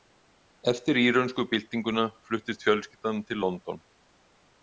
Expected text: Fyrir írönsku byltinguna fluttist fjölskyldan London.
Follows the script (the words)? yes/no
no